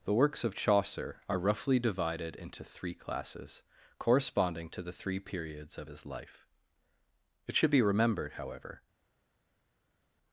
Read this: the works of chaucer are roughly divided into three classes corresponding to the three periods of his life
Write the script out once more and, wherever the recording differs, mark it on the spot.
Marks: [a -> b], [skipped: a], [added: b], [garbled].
the works of chaucer are roughly divided into three classes corresponding to the three periods of his life [added: it should be remembered however]